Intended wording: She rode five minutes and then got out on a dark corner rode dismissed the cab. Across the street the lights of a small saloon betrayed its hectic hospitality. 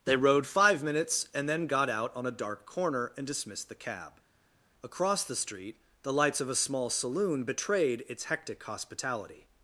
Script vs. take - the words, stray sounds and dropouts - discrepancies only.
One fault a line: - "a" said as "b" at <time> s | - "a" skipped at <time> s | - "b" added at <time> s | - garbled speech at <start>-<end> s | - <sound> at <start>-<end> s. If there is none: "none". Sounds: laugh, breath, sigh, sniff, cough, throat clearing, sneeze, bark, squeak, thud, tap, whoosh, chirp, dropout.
- "She" said as "They" at 0.0 s
- "rode" said as "and" at 3.2 s